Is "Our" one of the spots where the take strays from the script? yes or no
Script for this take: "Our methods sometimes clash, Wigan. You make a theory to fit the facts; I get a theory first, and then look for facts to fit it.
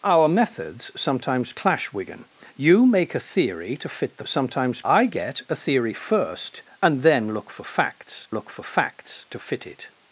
no